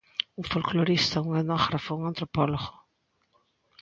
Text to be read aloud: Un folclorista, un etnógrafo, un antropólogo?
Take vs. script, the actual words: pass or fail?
pass